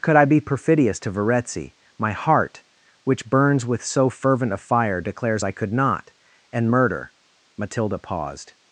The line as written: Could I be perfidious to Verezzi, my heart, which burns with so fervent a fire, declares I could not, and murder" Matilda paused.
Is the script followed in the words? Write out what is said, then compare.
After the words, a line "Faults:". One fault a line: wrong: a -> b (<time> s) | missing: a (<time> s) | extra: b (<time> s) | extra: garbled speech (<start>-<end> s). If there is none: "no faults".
Could I be perfidious to Verezzi, my heart, which burns with so fervent a fire, declares I could not, and murder" Matilda paused.
Faults:
no faults